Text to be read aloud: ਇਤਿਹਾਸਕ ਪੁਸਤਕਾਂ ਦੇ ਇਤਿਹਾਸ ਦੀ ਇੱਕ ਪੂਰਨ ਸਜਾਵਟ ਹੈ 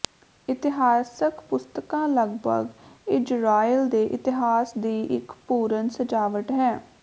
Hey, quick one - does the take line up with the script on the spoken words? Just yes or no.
no